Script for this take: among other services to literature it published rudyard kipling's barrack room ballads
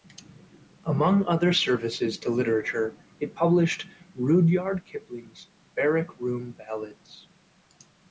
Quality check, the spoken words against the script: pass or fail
pass